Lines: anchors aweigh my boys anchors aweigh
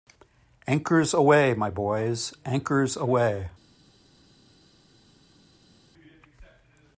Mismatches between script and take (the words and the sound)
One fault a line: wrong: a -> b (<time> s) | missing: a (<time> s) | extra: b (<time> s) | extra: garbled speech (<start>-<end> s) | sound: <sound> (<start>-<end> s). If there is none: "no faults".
no faults